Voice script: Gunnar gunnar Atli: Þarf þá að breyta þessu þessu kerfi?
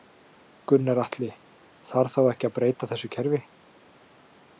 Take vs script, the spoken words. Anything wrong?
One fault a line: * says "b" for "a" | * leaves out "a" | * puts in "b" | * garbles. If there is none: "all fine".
* leaves out "gunnar"
* puts in "ekki"
* leaves out "þessu"